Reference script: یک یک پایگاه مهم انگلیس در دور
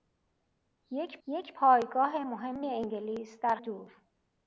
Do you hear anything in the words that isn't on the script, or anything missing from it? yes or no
no